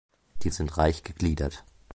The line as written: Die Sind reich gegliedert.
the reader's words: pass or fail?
pass